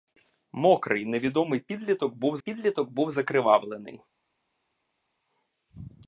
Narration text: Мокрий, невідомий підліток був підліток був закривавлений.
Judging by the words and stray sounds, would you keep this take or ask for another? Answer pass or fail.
pass